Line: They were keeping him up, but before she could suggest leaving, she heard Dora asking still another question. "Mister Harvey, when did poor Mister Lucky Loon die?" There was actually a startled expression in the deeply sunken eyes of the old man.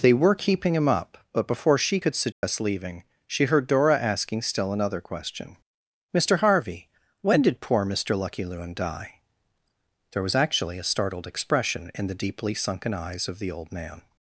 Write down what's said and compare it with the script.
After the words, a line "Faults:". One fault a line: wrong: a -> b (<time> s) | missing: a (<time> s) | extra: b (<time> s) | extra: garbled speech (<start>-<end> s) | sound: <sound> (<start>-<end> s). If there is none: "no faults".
They were keeping him up, but before she could suggest leaving, she heard Dora asking still another question. "Mister Harvey, when did poor Mister Lucky Loon die?" There was actually a startled expression in the deeply sunken eyes of the old man.
Faults:
sound: dropout (2.3-2.4 s)